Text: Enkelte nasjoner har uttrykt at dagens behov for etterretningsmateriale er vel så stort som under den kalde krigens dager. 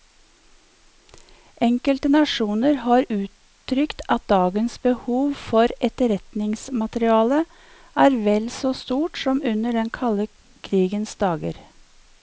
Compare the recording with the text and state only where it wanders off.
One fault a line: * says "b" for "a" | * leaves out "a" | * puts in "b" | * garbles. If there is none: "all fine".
all fine